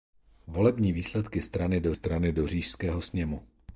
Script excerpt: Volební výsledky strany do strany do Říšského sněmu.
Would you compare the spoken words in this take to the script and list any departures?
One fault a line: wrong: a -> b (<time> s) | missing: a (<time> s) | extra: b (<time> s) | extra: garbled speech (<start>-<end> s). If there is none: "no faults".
no faults